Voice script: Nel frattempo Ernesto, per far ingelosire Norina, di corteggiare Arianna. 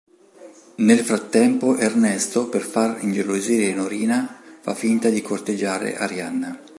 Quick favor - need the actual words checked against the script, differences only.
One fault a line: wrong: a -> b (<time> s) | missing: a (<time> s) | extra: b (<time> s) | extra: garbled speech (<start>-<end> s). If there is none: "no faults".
extra: fa finta (4.6 s)